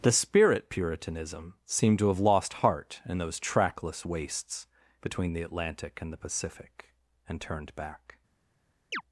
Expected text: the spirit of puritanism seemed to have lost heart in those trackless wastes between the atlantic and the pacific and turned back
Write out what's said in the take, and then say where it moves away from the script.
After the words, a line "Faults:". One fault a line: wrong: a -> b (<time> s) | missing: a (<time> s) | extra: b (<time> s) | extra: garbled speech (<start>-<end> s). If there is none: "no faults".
the spirit puritanism seemed to have lost heart in those trackless wastes between the atlantic and the pacific and turned back
Faults:
missing: of (0.7 s)